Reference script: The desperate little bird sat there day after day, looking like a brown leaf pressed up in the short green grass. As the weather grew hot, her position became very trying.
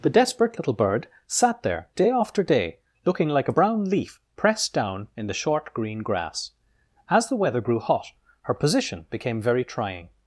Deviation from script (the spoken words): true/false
true